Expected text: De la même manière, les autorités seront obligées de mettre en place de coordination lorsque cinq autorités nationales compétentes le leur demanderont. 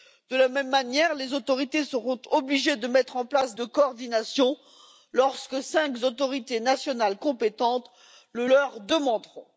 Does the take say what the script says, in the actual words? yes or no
yes